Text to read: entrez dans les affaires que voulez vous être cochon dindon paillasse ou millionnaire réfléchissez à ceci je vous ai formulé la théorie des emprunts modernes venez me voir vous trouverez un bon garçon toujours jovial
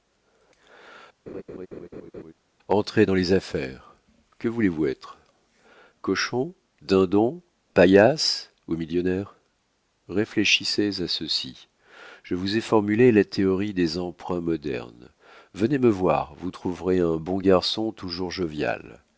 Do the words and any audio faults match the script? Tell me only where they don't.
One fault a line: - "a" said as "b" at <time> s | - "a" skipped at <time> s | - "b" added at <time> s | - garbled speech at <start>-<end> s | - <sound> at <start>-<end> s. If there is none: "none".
- laugh at 1.3-2.3 s